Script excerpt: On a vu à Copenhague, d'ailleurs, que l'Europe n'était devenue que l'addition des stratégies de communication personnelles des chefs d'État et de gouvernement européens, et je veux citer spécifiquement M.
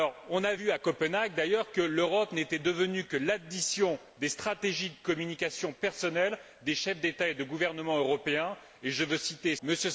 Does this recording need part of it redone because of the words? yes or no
yes